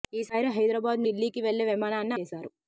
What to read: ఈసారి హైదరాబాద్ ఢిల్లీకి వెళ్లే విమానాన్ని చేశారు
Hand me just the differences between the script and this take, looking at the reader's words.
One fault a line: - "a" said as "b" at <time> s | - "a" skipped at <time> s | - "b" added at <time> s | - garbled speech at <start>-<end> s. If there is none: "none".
none